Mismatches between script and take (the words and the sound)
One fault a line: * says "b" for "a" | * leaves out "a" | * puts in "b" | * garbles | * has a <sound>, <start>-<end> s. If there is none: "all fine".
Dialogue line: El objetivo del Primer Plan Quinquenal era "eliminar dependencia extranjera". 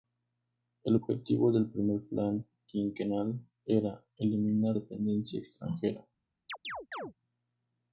* has a chirp, 6.5-7.1 s